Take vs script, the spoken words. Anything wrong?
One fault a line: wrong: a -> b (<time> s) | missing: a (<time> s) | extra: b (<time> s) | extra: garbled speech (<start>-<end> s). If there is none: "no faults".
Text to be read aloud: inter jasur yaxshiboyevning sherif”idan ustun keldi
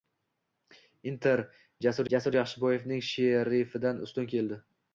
extra: jasur (2.1 s)